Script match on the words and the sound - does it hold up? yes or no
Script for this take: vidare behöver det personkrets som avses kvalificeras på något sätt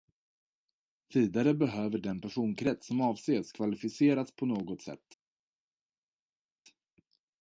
no